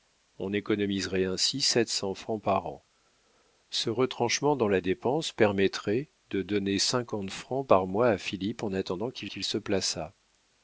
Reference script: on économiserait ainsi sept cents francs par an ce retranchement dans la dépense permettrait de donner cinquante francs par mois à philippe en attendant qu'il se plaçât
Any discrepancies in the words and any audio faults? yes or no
yes